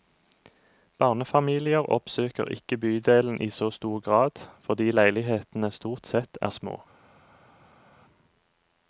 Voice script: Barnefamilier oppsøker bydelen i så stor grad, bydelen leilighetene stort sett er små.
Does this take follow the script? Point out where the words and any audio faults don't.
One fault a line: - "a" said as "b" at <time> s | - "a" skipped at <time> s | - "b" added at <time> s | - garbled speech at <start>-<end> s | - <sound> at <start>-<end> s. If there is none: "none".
- "ikke" added at 2.5 s
- "bydelen" said as "fordi" at 4.6 s